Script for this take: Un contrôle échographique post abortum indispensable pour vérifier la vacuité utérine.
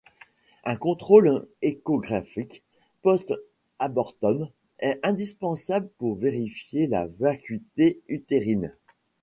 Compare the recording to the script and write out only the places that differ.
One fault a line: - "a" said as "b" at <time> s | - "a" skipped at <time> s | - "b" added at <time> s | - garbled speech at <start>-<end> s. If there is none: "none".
- "est" added at 4.8 s